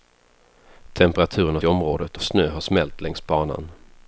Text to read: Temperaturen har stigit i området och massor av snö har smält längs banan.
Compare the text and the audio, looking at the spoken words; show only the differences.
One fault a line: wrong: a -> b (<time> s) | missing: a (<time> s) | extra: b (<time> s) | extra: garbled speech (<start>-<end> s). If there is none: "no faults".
missing: stigit (1.6 s)
missing: och massor (2.2 s)